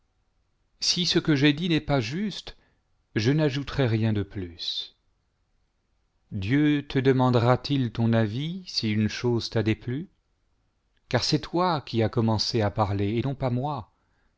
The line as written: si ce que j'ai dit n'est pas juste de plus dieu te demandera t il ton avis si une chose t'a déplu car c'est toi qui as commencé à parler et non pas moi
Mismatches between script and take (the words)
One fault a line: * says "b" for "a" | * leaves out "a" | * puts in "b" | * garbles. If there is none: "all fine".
* puts in "je n'ajouterai rien"